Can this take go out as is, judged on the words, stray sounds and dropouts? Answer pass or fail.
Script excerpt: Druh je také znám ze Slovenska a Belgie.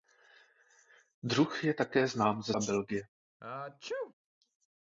fail